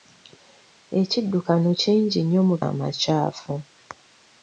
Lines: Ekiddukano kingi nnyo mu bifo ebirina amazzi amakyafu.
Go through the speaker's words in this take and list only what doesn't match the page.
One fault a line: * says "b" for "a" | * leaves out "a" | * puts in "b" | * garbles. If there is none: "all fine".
* leaves out "bifo ebirina amazzi"